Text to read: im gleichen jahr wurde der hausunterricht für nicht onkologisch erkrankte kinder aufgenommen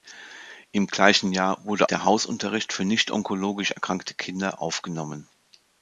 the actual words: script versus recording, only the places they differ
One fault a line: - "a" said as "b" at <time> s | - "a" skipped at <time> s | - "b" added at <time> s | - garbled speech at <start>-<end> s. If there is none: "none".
none